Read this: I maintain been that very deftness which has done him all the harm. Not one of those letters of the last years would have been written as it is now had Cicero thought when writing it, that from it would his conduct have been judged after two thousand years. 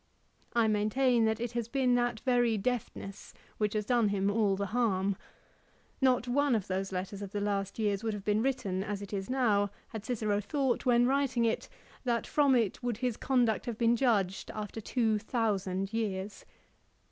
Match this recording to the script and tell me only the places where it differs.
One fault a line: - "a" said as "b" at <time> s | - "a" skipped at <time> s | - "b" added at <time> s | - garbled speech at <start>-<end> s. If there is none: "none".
- "that it has" added at 1.2 s